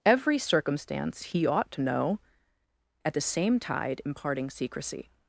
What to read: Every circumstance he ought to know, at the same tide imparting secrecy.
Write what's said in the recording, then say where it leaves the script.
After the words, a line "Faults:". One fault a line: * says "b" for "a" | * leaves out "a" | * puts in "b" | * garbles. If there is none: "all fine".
Every circumstance he ought to know, at the same tide imparting secrecy.
Faults:
all fine